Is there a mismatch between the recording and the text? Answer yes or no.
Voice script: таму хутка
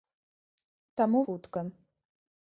no